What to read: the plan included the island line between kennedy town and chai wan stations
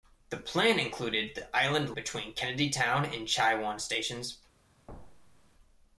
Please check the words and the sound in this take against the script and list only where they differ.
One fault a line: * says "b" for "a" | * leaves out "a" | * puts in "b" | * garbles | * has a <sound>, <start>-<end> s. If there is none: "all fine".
* leaves out "line"
* has a thud, 4.9-5.5 s